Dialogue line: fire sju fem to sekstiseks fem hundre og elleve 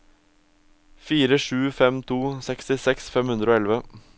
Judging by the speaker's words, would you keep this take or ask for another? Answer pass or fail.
pass